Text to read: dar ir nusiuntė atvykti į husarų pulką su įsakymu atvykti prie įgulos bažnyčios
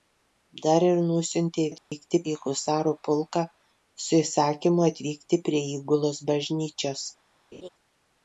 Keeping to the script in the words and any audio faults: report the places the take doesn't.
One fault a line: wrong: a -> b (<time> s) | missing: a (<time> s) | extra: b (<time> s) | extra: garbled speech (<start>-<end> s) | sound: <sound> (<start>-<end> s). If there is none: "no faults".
sound: dropout (1.8-1.9 s)
sound: laugh (7.5-7.7 s)